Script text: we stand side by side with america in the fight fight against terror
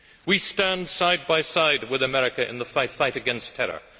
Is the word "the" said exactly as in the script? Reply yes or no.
yes